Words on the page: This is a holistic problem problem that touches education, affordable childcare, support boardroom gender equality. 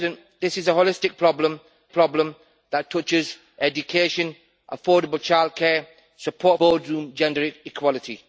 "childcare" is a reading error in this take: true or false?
false